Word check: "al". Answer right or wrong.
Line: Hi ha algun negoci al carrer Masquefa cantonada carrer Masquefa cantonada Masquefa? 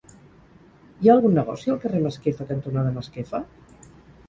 right